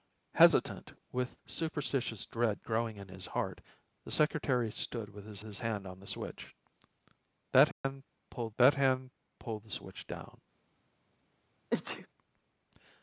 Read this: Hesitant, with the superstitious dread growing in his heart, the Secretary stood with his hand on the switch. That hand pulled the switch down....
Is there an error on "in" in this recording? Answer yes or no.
no